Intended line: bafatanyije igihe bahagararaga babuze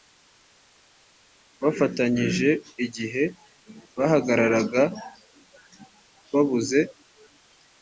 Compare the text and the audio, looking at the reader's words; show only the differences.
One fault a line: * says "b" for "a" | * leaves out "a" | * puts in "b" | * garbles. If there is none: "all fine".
all fine